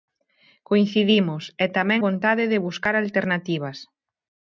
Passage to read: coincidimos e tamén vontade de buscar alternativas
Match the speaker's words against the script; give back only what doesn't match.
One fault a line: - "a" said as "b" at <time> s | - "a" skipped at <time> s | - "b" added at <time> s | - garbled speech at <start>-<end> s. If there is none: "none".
none